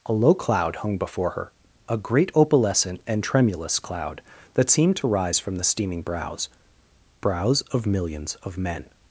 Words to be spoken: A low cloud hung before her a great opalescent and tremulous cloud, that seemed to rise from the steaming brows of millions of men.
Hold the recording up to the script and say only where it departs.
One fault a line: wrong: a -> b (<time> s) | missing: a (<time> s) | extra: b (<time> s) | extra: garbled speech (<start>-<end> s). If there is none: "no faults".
extra: brows (7.2 s)